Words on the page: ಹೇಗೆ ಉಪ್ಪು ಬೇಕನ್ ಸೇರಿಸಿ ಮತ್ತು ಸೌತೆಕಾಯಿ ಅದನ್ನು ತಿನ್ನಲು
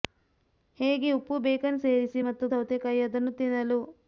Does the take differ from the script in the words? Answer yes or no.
no